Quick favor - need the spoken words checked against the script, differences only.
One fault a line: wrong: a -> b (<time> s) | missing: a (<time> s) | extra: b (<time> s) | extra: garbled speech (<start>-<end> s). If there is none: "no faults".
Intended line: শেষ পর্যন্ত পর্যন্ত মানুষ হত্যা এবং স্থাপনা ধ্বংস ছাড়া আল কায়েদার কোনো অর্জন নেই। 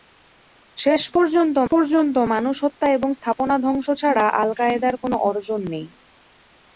no faults